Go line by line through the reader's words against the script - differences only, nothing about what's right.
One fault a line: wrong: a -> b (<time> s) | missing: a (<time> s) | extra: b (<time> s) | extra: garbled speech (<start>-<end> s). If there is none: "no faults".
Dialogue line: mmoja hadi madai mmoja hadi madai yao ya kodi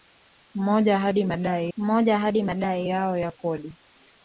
no faults